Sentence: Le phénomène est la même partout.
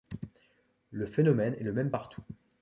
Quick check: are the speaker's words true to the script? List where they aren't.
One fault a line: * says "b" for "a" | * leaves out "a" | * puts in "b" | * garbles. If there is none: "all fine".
* says "le" for "la"